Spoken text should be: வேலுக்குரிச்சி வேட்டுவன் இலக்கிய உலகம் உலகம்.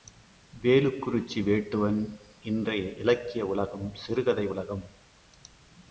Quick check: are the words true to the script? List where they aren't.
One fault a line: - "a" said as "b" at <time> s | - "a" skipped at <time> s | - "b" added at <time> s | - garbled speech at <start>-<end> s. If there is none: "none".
- "இன்றைய" added at 2.4 s
- "சிறுகதை" added at 3.9 s